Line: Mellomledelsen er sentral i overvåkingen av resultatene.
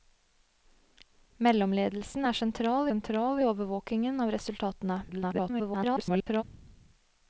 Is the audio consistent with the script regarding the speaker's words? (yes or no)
no